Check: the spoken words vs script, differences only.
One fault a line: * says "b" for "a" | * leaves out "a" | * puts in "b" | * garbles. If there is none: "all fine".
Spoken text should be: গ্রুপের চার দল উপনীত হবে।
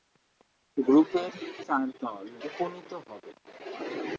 all fine